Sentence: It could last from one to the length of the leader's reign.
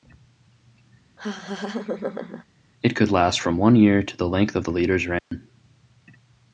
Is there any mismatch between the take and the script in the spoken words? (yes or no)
yes